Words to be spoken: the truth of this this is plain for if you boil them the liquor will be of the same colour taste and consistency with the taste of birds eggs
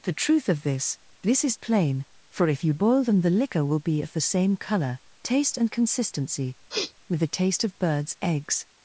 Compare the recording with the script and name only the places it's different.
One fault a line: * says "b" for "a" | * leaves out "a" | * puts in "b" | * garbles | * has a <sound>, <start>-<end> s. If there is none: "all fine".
* has a sniff, 6.7-6.9 s